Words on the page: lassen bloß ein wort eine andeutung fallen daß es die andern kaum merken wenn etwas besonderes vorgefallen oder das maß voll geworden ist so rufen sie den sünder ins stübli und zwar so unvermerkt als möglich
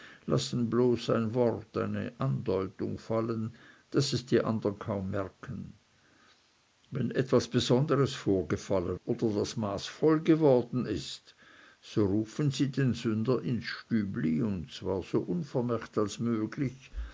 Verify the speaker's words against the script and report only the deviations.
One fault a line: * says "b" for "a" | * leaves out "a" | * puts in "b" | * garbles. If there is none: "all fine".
all fine